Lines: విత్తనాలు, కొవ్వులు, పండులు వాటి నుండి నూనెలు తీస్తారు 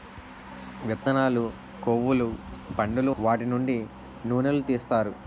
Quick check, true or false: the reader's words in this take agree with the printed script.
true